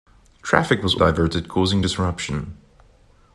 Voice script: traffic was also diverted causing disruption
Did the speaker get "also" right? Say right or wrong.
wrong